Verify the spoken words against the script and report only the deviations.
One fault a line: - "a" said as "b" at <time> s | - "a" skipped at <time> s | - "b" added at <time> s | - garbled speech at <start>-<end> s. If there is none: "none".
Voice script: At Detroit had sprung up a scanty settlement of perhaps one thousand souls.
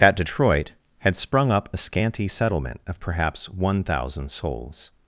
none